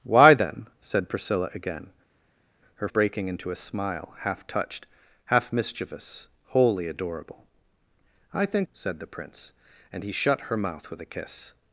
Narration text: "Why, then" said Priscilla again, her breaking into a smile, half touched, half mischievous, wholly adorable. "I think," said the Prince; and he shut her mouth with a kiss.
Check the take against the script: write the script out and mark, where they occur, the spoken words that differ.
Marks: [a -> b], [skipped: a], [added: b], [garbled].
"Why, then" said Priscilla again, her breaking into a smile, half touched, half mischievous, wholly adorable. "I think," said the Prince; and he shut her mouth with a kiss.